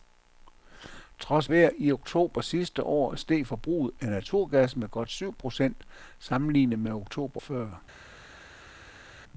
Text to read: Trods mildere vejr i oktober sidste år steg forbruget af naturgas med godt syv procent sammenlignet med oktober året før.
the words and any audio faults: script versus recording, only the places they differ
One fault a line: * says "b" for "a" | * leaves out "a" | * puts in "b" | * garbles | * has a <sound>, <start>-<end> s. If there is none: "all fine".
* leaves out "mildere"
* leaves out "året"